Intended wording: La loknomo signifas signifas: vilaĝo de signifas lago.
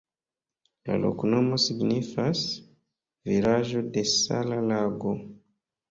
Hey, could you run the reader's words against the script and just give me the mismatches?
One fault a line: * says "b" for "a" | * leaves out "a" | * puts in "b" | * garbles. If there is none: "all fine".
* leaves out "signifas"
* says "sala" for "signifas"